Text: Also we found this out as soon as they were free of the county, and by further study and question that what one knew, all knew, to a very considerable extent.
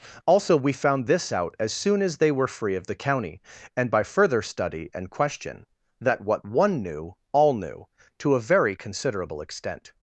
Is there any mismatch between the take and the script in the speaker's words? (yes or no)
no